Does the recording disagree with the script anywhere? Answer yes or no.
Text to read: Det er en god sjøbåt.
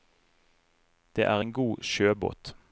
no